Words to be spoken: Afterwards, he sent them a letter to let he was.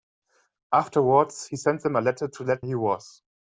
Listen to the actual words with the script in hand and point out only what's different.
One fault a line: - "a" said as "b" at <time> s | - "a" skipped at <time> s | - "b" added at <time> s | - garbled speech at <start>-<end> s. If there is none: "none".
none